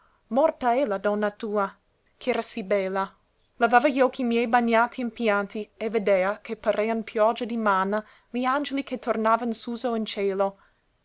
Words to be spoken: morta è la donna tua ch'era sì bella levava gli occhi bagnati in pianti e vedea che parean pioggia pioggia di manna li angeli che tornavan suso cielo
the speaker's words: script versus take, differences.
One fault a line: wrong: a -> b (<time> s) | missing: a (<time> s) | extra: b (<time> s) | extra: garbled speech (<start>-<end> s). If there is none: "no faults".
extra: miei (4.2 s)
missing: pioggia (7.5 s)
extra: in (9.9 s)